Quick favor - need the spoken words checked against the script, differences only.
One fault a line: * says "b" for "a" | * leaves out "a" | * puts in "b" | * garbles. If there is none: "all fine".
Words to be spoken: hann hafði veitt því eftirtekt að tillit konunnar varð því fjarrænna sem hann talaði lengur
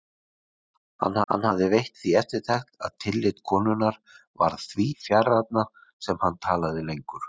* puts in "hann"